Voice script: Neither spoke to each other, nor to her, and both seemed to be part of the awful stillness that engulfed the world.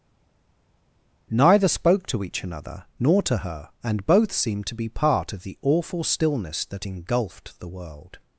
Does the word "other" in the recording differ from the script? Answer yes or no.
yes